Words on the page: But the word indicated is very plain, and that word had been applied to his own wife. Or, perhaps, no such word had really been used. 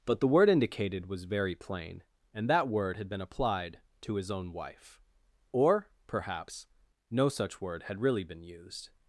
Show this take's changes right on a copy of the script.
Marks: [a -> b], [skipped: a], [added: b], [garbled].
But the word indicated [is -> was] very plain, and that word had been applied to his own wife. Or, perhaps, no such word had really been used.